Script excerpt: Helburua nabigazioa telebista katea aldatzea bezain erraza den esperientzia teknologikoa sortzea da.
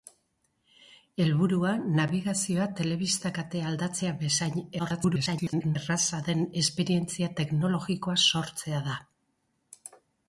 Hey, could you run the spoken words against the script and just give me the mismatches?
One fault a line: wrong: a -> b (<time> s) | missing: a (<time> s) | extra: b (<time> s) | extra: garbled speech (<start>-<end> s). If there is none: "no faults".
extra: garbled speech (4.8-5.8 s)